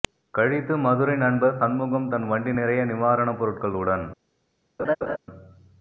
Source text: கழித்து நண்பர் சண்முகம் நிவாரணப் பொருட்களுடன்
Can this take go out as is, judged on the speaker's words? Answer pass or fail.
fail